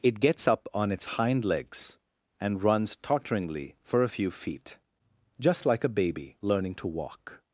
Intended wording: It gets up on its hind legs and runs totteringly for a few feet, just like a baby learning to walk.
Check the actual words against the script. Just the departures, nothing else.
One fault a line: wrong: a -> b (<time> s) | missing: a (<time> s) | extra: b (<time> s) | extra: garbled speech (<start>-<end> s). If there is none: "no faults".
no faults